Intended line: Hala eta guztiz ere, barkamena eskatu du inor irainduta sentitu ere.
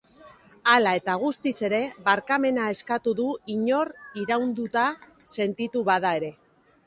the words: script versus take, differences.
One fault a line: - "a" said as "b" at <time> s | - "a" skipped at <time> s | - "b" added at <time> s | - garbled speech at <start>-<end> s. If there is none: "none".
- "bada" added at 5.9 s